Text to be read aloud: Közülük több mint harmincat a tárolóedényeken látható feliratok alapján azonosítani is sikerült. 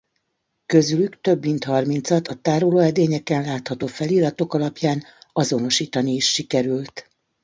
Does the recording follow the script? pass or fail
pass